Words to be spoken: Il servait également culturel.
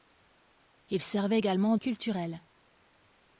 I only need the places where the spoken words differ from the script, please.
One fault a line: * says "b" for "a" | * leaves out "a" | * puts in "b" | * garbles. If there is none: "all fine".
all fine